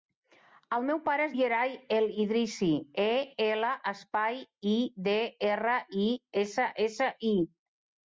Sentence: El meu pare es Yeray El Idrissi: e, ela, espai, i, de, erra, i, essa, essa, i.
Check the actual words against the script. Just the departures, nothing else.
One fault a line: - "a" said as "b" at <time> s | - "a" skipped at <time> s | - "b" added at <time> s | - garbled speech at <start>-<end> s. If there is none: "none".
none